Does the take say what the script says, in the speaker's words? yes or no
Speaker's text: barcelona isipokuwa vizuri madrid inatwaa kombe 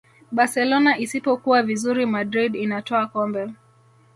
yes